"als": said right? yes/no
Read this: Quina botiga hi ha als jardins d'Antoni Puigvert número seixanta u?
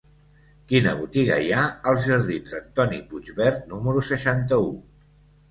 yes